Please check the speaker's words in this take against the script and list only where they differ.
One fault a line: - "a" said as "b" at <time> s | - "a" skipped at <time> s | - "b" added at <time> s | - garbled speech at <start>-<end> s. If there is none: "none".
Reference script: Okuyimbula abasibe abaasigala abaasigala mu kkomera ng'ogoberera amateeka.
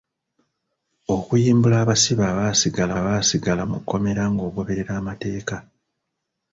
none